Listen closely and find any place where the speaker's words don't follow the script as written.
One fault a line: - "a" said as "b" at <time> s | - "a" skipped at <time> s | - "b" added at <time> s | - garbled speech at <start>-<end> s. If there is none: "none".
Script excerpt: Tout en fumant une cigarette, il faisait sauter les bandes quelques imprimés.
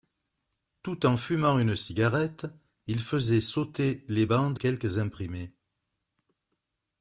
none